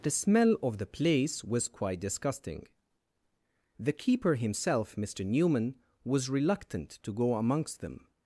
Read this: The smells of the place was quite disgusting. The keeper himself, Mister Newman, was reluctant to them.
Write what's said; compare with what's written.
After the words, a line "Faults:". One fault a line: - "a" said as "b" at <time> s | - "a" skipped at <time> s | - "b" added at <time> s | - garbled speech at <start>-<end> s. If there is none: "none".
The smell of the place was quite disgusting. The keeper himself, Mister Newman, was reluctant to go amongst them.
Faults:
- "smells" said as "smell" at 0.1 s
- "go amongst" added at 7.1 s